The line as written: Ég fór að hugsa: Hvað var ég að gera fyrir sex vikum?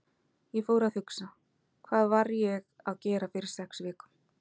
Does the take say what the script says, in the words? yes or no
yes